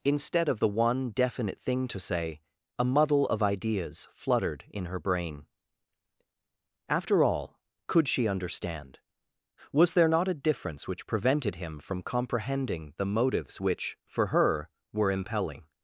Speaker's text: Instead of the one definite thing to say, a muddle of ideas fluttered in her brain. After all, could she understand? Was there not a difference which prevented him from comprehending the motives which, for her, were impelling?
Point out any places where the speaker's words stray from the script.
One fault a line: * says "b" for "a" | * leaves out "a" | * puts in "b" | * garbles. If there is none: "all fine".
all fine